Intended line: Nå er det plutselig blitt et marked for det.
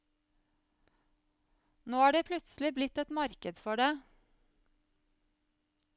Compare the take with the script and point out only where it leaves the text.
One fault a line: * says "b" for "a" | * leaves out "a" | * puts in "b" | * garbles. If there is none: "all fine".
all fine